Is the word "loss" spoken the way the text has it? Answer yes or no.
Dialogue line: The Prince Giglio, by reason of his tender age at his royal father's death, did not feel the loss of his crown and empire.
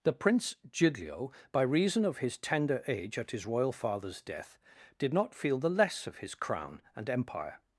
no